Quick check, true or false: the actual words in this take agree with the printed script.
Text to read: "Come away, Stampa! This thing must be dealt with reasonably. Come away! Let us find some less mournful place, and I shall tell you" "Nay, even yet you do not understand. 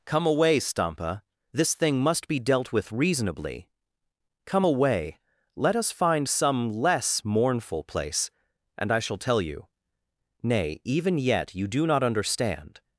true